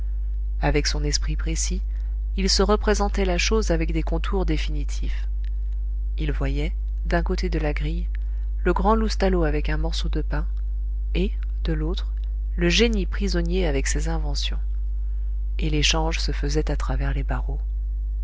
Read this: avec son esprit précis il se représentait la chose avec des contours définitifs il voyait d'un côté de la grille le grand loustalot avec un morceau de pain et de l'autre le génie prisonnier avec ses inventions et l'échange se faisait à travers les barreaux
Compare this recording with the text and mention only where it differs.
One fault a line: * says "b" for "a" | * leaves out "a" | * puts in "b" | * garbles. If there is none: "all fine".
all fine